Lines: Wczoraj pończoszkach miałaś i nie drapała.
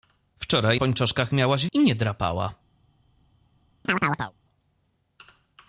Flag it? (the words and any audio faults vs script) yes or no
yes